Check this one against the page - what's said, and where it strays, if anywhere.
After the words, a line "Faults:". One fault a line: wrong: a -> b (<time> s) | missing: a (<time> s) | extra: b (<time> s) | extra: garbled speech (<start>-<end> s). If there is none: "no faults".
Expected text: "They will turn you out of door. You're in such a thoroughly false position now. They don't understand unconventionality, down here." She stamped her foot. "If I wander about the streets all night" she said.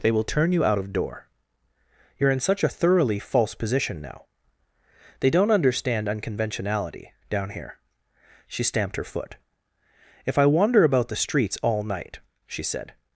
"They will turn you out of door. You're in such a thoroughly false position now. They don't understand unconventionality, down here." She stamped her foot. "If I wander about the streets all night" she said.
Faults:
no faults